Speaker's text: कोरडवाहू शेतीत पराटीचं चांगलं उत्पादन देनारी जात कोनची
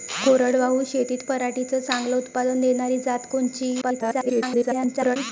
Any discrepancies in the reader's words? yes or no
yes